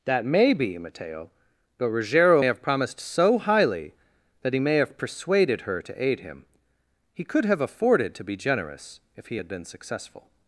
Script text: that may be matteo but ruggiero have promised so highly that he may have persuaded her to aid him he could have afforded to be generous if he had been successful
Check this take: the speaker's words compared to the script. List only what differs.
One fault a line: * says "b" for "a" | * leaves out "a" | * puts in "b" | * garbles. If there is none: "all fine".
all fine